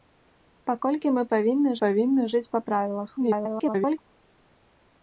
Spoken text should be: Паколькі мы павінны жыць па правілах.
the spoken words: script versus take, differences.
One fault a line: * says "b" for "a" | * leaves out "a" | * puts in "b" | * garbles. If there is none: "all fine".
* puts in "павінны"
* garbles